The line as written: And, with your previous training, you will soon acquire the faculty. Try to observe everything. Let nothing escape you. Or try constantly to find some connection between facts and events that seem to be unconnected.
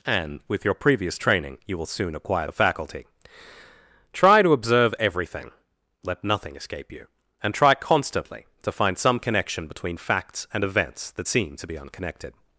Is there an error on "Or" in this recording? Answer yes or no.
yes